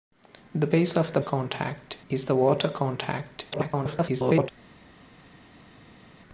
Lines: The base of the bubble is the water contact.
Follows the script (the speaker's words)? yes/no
no